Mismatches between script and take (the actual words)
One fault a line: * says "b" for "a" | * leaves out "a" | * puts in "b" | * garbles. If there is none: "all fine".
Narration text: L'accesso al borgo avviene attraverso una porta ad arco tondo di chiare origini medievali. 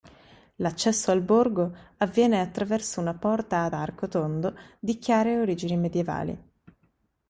all fine